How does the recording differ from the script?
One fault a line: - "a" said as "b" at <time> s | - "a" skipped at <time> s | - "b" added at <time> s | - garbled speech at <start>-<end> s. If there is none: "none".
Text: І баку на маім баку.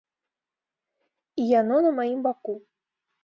- "баку" said as "яно" at 1.5 s